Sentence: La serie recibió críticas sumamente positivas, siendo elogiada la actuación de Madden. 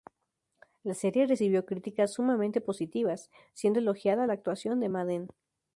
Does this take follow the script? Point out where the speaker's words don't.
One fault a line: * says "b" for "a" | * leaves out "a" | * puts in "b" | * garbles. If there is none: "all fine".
all fine